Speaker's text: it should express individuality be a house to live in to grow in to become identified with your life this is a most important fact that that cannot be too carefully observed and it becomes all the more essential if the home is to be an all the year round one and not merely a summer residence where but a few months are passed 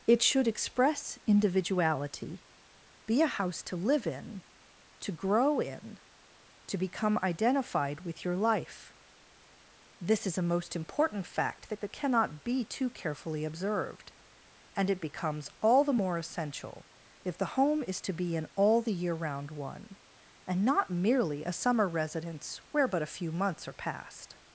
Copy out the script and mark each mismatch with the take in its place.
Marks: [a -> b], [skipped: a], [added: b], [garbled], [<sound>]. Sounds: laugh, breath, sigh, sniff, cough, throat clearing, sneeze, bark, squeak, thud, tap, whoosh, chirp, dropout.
it should express individuality be a house to live in to grow in to become identified with your life this is a most important fact that that cannot be too carefully observed and it becomes all the more essential if the home is to be an all the year round one and not merely a summer residence where but a few months are passed